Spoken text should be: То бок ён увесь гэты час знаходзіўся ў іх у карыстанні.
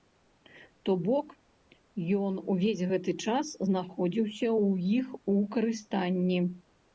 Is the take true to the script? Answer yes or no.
yes